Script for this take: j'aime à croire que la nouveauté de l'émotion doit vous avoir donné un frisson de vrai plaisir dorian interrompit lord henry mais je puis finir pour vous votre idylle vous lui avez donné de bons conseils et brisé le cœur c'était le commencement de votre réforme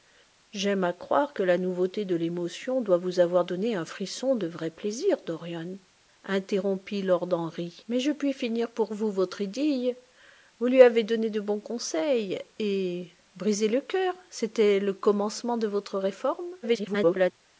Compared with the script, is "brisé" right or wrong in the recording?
right